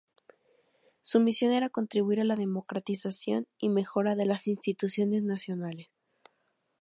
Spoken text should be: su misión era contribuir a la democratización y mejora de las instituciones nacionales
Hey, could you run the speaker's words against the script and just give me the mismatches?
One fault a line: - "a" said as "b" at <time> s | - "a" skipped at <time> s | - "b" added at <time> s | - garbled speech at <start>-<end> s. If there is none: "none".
none